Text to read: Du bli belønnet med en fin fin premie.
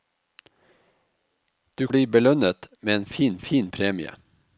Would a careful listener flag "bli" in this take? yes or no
no